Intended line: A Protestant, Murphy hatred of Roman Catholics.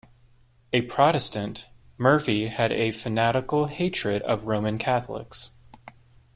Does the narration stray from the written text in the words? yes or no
yes